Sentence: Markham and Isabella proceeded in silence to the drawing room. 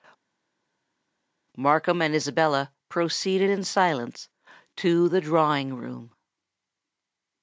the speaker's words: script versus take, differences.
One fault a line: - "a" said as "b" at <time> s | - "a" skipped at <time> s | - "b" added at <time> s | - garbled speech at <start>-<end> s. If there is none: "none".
none